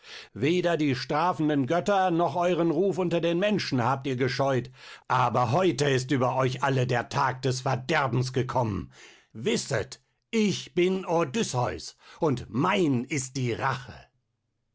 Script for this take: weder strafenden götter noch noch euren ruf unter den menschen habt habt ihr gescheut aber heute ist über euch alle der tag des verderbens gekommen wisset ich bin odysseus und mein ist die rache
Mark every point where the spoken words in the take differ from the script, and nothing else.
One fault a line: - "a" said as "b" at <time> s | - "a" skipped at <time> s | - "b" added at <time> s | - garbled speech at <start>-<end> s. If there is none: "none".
- "die" added at 0.8 s
- "noch" skipped at 2.4 s
- "habt" skipped at 4.1 s